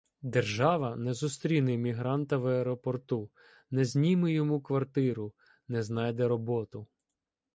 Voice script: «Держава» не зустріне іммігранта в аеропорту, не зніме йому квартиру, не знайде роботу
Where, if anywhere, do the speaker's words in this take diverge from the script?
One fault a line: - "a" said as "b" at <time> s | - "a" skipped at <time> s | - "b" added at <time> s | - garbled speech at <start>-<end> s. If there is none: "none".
none